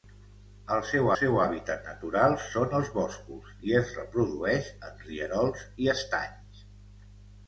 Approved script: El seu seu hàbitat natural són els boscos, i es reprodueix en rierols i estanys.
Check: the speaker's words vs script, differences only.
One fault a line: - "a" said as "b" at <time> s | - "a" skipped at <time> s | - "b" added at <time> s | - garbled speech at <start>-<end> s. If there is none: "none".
none